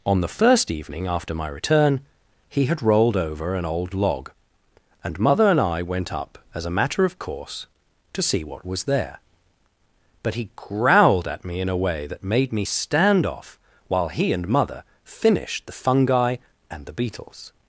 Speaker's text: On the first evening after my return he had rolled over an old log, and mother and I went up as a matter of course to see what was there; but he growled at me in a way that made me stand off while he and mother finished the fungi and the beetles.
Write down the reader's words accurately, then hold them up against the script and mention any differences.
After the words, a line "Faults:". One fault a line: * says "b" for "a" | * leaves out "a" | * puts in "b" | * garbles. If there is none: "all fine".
On the first evening after my return he had rolled over an old log, and mother and I went up as a matter of course to see what was there; but he growled at me in a way that made me stand off while he and mother finished the fungi and the beetles.
Faults:
all fine